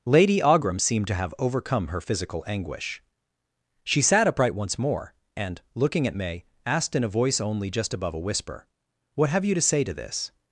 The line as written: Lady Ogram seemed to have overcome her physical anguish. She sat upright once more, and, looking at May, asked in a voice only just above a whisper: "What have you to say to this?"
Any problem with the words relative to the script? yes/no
no